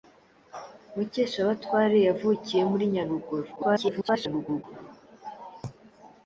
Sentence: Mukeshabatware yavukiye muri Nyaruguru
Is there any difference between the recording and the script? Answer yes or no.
yes